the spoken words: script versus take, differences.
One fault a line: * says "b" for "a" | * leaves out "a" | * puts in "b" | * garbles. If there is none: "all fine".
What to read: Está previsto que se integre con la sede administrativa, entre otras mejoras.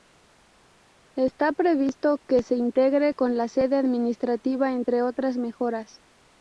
all fine